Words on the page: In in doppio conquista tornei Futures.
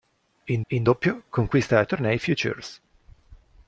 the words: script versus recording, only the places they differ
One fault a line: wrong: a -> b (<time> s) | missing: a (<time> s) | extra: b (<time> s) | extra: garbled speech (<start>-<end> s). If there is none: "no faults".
no faults